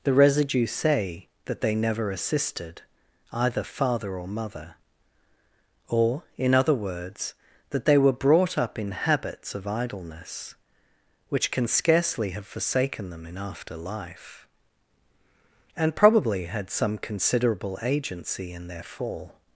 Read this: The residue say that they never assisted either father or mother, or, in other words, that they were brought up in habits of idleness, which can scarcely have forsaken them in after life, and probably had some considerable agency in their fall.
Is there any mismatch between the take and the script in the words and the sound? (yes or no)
no